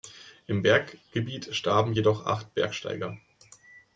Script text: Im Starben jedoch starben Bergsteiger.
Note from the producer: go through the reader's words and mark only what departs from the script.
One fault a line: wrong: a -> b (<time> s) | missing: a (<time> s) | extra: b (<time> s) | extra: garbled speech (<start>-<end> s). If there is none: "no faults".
extra: Berggebiet (0.6 s)
wrong: starben -> acht (2.2 s)